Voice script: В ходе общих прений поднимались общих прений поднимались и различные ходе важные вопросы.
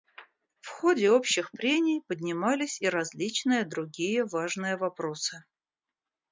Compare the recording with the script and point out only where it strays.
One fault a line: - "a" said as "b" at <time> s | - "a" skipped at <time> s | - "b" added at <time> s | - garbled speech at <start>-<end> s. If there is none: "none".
- "общих прений поднимались" skipped at 2.8 s
- "ходе" said as "другие" at 3.7 s